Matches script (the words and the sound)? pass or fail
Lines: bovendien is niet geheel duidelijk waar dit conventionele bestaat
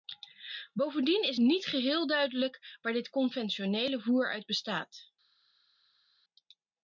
fail